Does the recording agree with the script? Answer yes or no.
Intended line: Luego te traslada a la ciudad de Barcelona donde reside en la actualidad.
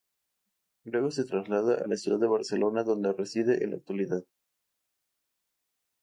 no